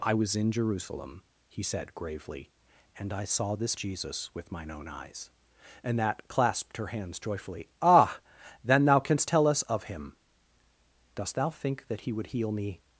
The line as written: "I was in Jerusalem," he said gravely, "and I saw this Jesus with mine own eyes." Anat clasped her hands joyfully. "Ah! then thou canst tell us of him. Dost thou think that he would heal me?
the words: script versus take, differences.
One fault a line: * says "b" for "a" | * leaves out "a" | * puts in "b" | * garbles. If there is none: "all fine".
all fine